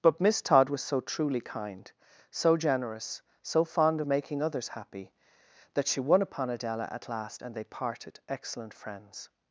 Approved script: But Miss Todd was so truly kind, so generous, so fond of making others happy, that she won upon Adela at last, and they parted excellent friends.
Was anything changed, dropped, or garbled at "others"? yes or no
no